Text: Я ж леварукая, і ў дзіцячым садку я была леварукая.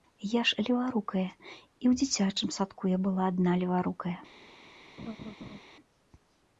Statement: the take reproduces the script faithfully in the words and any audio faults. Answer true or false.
false